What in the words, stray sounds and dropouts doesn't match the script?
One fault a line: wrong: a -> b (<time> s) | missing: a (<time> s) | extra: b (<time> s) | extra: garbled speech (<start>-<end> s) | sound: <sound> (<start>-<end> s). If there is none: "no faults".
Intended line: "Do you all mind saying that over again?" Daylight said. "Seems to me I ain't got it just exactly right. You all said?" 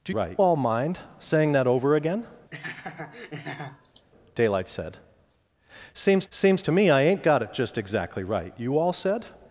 wrong: you -> right (0.1 s)
sound: laugh (2.5-4.1 s)
extra: seems (6.3 s)